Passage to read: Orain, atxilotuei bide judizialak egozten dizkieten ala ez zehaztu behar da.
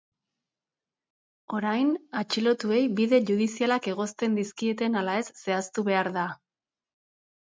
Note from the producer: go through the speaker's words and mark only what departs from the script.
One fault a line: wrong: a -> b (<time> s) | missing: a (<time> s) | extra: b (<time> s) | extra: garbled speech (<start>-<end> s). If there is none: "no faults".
no faults